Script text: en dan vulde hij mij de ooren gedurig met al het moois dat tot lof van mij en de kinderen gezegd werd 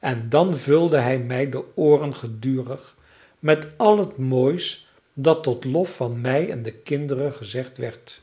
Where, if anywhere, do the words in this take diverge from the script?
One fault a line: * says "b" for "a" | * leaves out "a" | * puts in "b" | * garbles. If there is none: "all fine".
all fine